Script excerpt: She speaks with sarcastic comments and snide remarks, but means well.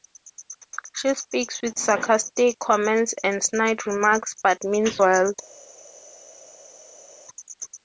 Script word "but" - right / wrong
right